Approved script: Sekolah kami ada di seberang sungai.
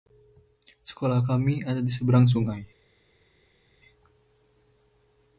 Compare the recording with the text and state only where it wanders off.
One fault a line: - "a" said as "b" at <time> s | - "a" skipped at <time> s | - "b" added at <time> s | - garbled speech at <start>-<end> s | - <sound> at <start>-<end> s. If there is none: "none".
none